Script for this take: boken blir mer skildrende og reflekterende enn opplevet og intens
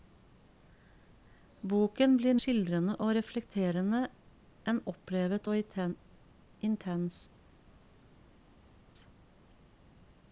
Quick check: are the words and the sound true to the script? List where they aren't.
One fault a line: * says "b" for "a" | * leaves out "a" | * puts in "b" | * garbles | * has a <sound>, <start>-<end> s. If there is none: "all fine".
* leaves out "mer"